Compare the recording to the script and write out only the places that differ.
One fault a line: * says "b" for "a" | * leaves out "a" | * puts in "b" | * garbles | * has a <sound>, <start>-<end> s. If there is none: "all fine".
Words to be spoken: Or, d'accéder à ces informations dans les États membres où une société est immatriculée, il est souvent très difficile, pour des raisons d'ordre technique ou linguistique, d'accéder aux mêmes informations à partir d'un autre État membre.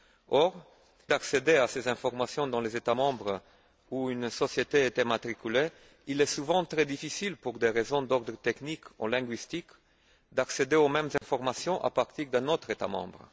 * has a dropout, 11.2-11.2 s